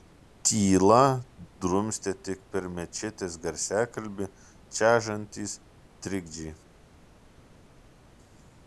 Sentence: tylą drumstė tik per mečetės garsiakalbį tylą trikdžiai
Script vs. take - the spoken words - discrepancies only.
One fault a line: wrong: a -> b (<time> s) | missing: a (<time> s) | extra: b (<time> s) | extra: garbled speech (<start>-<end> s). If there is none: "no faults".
wrong: tylą -> čežantys (4.8 s)